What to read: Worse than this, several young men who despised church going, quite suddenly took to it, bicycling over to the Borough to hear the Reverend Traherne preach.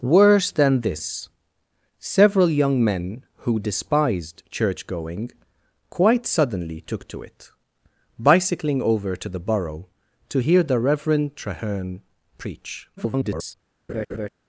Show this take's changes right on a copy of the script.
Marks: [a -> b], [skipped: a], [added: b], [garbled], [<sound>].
Worse than this, several young men who despised church going, quite suddenly took to it, bicycling over to the Borough to hear the Reverend Traherne preach. [garbled] [laugh]